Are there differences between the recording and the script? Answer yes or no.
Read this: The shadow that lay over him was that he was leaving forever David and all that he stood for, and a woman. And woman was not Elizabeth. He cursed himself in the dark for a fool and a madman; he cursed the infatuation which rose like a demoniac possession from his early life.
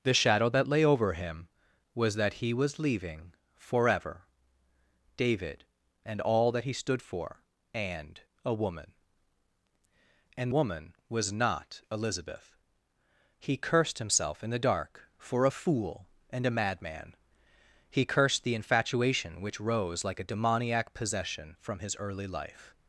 no